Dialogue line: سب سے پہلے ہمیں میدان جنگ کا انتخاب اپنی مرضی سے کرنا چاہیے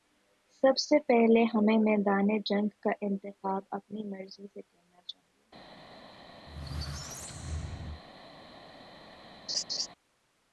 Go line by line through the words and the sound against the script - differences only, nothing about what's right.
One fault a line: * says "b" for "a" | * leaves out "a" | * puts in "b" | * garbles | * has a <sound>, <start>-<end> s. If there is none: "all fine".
* has a squeak, 6.5-8.0 s
* has a laugh, 9.5-9.9 s